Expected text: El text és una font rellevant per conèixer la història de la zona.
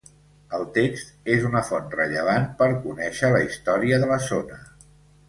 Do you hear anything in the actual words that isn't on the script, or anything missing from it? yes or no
no